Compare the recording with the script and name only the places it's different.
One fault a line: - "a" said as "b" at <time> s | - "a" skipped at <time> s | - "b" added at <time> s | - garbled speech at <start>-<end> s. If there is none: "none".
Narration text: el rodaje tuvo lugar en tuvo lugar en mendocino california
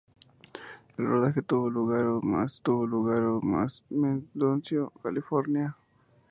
none